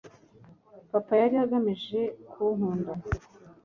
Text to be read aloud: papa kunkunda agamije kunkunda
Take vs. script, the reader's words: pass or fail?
fail